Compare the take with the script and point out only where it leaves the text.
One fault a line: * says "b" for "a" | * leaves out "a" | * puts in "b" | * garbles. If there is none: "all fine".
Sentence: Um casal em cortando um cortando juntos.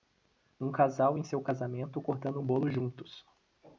* puts in "seu casamento"
* says "bolo" for "cortando"